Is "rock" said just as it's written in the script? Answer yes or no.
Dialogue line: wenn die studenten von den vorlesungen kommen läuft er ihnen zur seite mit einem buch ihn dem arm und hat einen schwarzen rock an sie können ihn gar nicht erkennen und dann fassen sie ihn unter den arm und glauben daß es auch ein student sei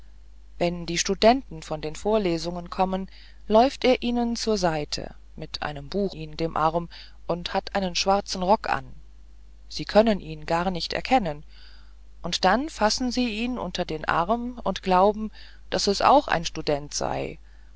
yes